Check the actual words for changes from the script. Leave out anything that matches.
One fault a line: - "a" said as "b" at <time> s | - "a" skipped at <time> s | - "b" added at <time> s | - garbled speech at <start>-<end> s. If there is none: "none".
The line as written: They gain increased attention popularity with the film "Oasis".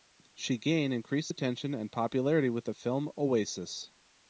- "They" said as "She" at 0.3 s
- "and" added at 1.7 s